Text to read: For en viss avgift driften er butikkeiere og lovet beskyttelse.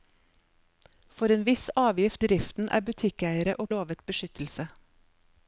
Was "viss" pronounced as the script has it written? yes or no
yes